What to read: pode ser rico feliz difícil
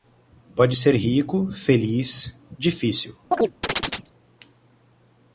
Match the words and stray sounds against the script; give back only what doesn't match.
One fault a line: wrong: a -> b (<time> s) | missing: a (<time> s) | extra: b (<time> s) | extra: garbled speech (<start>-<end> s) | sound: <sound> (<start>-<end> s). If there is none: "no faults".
sound: chirp (3.3-4.1 s)